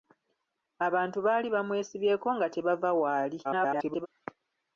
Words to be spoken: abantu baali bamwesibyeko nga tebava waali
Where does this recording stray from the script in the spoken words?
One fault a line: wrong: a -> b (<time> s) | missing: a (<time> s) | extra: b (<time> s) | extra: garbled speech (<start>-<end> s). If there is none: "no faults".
extra: garbled speech (3.4-4.1 s)